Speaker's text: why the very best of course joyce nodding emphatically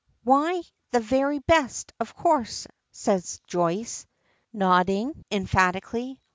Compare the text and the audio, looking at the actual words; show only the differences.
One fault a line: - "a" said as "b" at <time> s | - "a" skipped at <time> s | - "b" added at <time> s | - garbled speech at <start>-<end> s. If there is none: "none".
- "says" added at 2.9 s